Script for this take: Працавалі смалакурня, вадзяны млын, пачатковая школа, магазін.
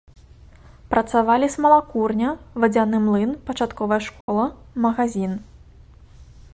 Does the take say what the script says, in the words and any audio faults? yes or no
no